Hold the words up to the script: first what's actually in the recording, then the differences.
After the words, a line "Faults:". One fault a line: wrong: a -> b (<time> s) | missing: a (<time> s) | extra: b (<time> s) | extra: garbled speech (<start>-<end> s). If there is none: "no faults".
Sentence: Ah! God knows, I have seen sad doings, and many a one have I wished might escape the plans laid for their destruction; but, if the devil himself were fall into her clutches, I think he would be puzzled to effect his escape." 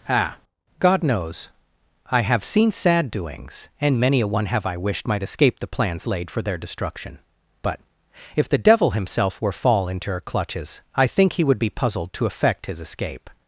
Ah! God knows, I have seen sad doings, and many a one have I wished might escape the plans laid for their destruction; but, if the devil himself were fall into her clutches, I think he would be puzzled to effect his escape."
Faults:
no faults